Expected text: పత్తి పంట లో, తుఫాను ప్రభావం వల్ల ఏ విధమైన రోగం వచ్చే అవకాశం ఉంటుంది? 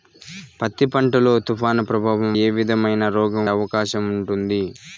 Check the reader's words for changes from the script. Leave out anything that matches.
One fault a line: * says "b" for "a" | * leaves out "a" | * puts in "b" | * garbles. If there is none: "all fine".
* leaves out "వల్ల"
* leaves out "వచ్చే"